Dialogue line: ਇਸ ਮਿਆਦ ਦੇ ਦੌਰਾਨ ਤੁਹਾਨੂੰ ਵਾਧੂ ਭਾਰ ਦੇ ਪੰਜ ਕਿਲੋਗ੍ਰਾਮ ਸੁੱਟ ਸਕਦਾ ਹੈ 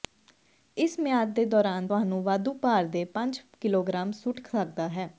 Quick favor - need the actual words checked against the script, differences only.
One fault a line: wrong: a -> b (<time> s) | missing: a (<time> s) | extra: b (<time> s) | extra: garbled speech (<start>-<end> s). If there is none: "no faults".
no faults